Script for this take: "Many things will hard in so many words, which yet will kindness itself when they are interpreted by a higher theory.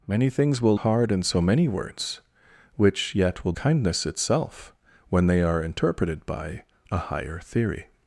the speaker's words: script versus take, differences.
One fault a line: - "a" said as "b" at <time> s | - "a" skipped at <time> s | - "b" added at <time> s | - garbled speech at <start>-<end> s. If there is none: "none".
none